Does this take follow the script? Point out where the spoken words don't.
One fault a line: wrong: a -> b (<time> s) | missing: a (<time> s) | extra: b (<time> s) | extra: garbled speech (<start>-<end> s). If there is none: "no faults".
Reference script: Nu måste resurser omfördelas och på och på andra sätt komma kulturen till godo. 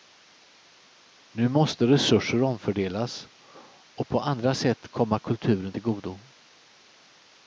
missing: och på (4.2 s)